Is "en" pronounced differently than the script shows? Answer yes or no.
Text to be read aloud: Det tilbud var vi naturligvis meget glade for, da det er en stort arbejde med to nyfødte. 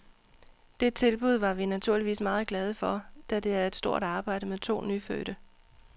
yes